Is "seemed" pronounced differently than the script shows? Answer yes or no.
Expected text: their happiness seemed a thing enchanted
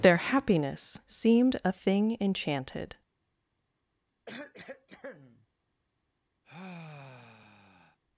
no